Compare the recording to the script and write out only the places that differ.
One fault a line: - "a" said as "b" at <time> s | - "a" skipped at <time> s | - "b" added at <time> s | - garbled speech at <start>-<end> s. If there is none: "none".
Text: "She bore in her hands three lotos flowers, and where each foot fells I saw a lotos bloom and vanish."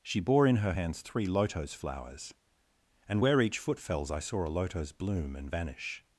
none